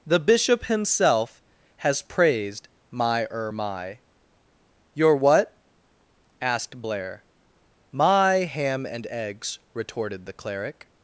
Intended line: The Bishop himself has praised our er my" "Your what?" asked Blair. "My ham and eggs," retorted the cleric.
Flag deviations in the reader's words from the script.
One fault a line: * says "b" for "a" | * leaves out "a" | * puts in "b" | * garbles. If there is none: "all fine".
* says "my" for "our"